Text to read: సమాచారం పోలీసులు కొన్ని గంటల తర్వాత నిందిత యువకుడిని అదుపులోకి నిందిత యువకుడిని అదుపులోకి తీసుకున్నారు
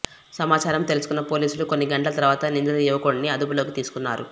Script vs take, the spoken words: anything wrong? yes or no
yes